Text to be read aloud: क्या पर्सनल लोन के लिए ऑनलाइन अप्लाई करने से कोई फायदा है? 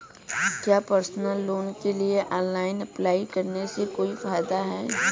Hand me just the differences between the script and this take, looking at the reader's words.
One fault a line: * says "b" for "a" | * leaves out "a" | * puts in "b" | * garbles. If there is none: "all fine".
all fine